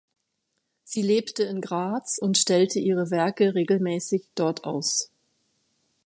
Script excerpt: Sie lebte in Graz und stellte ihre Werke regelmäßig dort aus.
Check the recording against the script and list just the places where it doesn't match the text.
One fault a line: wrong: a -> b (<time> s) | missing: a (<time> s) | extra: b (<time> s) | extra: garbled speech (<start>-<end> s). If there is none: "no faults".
no faults